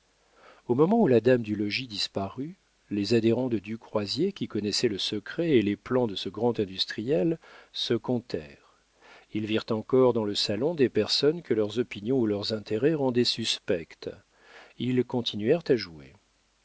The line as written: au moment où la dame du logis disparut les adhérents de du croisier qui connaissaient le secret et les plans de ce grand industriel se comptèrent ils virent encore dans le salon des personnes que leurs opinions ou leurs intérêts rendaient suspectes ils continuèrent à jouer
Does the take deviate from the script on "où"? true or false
false